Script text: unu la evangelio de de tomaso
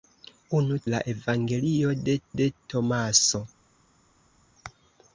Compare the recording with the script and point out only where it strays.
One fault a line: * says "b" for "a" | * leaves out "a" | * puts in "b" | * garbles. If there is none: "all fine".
all fine